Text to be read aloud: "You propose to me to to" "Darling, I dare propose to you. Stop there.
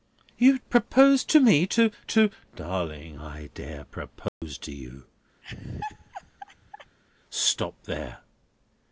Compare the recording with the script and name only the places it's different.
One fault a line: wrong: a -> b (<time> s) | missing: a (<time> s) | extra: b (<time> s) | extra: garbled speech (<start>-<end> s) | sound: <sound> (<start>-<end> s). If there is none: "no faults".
sound: dropout (4.3-4.4 s)
sound: laugh (5.4-7.0 s)